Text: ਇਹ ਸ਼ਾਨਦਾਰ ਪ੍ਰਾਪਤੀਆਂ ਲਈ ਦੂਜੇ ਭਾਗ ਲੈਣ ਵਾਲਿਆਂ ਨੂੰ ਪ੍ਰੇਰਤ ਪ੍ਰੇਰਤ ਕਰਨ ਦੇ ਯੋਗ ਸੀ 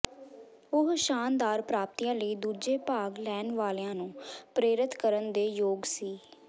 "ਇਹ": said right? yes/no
no